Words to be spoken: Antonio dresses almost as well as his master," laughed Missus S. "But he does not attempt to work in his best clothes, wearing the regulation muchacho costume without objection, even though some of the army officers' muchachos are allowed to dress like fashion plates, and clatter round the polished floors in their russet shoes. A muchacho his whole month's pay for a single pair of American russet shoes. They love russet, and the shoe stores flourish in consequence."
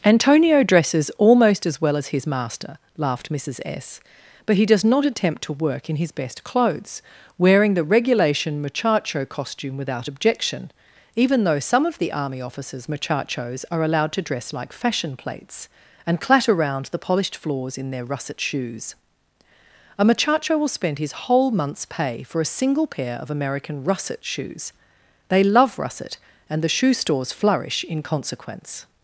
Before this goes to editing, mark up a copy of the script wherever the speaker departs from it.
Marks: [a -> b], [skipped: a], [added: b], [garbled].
Antonio dresses almost as well as his master," laughed Missus S. "But he does not attempt to work in his best clothes, wearing the regulation muchacho costume without objection, even though some of the army officers' muchachos are allowed to dress like fashion plates, and clatter round the polished floors in their russet shoes. A muchacho [added: will spend] his whole month's pay for a single pair of American russet shoes. They love russet, and the shoe stores flourish in consequence."